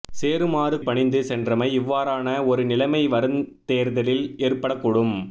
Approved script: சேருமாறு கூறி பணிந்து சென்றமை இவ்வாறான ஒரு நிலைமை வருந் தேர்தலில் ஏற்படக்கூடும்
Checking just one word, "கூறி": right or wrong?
wrong